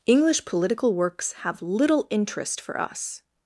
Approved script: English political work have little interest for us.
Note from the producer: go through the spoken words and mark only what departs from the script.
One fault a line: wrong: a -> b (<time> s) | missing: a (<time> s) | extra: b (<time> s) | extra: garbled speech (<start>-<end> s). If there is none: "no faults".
wrong: work -> works (0.9 s)